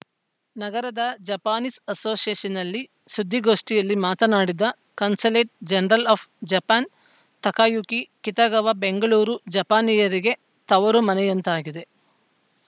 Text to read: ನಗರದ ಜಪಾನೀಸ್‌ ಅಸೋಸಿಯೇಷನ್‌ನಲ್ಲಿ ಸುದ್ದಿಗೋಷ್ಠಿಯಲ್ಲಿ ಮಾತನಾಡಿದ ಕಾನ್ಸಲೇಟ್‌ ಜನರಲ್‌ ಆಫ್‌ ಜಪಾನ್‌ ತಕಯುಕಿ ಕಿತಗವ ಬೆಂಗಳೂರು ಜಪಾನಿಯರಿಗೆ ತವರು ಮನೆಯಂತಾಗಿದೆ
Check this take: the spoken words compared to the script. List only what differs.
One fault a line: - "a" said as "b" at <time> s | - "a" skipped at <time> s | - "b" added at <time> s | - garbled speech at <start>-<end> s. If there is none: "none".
none